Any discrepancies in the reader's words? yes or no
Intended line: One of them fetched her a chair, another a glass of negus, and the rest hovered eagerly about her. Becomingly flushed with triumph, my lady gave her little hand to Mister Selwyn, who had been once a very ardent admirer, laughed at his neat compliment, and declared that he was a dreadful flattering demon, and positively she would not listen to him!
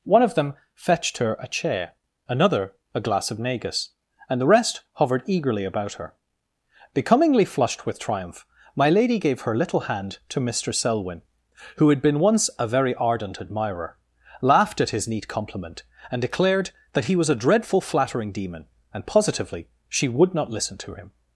no